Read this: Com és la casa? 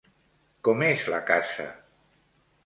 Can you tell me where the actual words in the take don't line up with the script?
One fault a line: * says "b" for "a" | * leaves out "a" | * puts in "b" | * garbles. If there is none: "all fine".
all fine